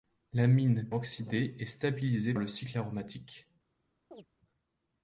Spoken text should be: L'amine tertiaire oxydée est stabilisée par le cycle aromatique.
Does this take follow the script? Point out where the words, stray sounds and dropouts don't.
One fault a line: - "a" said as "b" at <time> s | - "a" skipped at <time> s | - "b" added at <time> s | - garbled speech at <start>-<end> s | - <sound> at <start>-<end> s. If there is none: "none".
- "tertiaire" skipped at 0.9 s
- "par" skipped at 2.3 s
- chirp at 4.1-4.3 s